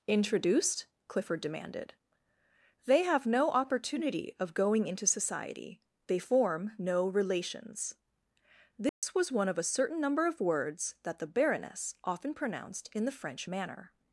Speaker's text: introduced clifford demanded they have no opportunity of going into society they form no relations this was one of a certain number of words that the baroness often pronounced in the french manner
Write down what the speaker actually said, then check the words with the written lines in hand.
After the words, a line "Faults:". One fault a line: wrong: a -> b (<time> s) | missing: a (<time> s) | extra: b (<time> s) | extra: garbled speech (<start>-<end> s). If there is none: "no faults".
introduced clifford demanded they have no opportunity of going into society they form no relations this was one of a certain number of words that the baroness often pronounced in the french manner
Faults:
no faults